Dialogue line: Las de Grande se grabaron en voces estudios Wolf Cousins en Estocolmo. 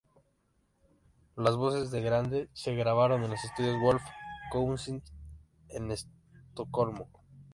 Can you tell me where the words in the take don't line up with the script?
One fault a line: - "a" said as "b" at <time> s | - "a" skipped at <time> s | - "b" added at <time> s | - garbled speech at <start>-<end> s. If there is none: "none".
- "voces" added at 1.6 s
- "voces" said as "los" at 3.3 s